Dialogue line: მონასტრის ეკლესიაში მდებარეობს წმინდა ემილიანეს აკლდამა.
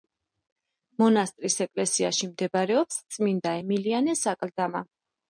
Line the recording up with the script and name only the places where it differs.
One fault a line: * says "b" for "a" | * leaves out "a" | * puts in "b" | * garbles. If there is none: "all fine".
all fine